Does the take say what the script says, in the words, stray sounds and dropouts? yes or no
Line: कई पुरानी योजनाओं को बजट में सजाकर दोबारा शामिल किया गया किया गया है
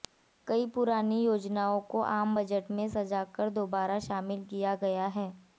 no